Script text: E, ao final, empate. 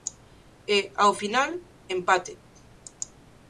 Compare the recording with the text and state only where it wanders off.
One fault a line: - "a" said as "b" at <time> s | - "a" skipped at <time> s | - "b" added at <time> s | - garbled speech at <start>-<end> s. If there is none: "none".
none